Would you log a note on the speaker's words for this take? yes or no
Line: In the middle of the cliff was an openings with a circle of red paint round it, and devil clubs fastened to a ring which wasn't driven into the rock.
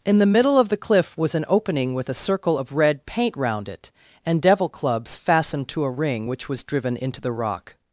yes